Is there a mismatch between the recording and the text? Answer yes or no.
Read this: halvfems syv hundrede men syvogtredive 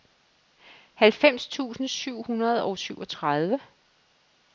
yes